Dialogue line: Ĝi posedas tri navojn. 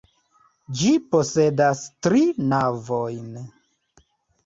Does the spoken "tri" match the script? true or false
true